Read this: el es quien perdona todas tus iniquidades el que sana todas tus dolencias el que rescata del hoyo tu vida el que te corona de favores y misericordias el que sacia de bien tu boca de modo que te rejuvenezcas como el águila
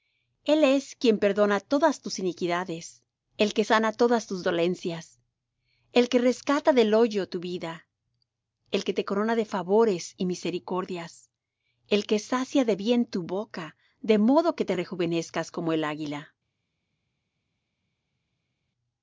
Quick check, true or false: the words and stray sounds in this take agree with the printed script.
true